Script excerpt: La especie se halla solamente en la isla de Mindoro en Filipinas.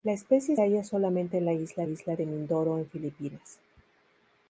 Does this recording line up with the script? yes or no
no